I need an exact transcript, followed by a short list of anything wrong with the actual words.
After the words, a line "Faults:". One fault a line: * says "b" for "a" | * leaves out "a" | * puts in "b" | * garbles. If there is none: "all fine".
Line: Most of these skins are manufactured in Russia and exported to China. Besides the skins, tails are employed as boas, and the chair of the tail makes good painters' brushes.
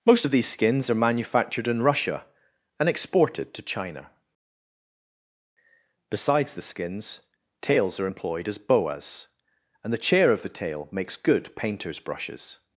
Most of these skins are manufactured in Russia and exported to China. Besides the skins, tails are employed as boas, and the chair of the tail makes good painters' brushes.
Faults:
all fine